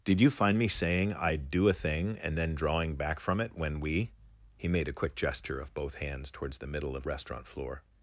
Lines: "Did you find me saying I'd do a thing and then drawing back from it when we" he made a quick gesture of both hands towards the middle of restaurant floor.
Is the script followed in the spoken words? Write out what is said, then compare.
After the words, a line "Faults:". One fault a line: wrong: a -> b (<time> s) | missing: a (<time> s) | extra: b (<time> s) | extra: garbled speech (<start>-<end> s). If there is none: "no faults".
"Did you find me saying I'd do a thing and then drawing back from it when we" he made a quick gesture of both hands towards the middle of restaurant floor.
Faults:
no faults